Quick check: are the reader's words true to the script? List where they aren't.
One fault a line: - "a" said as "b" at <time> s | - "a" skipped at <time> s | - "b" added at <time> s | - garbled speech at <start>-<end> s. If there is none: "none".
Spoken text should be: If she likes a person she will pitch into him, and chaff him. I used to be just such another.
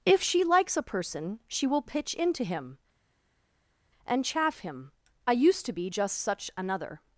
none